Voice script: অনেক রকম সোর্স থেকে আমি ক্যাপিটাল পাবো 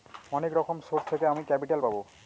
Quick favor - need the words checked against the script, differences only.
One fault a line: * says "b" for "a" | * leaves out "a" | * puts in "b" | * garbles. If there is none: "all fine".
all fine